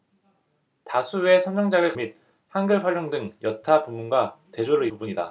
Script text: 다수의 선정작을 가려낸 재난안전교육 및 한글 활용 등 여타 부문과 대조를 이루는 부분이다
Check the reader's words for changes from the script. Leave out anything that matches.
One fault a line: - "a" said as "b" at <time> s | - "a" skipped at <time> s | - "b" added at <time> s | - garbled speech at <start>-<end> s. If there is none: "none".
- "가려낸 재난안전교육" skipped at 1.9 s
- "이루는" skipped at 4.9 s